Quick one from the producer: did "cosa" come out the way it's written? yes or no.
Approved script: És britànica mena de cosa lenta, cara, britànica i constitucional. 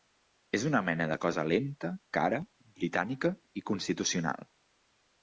yes